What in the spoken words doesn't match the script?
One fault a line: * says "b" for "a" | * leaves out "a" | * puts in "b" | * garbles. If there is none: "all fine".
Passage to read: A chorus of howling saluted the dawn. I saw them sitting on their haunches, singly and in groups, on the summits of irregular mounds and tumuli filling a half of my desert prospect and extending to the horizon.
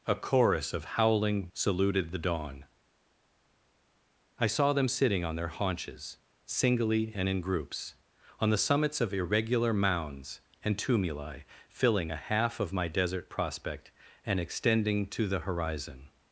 all fine